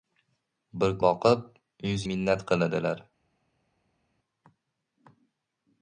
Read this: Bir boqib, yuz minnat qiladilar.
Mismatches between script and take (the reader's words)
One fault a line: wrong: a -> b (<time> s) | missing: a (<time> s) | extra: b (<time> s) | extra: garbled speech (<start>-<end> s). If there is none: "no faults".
no faults